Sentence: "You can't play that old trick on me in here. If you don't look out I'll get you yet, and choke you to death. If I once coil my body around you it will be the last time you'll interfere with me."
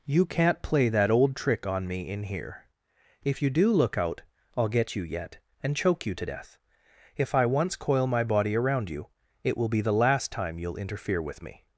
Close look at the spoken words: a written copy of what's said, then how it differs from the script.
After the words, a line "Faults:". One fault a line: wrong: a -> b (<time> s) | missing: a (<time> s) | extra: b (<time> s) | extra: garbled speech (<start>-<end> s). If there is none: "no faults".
"You can't play that old trick on me in here. If you do look out I'll get you yet, and choke you to death. If I once coil my body around you it will be the last time you'll interfere with me."
Faults:
wrong: don't -> do (3.5 s)